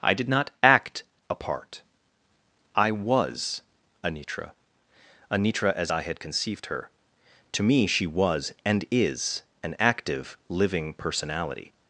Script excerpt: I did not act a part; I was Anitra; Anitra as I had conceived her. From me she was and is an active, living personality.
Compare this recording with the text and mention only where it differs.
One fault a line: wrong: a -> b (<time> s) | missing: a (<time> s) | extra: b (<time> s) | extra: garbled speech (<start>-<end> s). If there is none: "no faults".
wrong: From -> To (7.5 s)